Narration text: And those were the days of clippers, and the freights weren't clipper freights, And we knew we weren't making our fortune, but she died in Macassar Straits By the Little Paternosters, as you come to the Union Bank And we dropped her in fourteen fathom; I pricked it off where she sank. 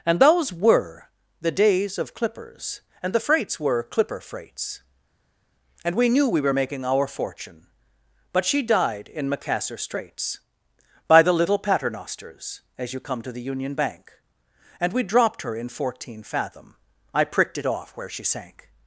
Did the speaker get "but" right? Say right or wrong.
right